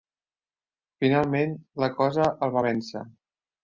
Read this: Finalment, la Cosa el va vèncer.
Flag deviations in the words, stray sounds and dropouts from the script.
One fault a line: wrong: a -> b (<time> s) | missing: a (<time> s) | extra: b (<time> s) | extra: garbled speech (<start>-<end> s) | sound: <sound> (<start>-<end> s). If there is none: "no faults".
no faults